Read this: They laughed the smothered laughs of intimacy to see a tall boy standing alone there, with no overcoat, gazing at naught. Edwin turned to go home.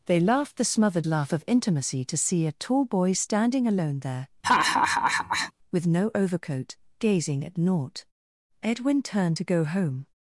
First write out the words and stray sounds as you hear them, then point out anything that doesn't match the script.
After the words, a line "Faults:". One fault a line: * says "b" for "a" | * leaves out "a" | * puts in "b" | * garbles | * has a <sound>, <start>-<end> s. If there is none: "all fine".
They laughed the smothered laugh of intimacy to see a tall boy standing alone there, with no overcoat, gazing at naught. Edwin turned to go home.
Faults:
* says "laugh" for "laughs"
* has a laugh, 4.4-5.5 s